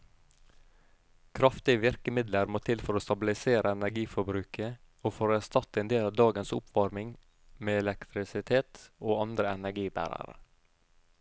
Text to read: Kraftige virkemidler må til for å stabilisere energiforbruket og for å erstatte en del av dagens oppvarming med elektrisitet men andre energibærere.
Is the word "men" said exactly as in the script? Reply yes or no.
no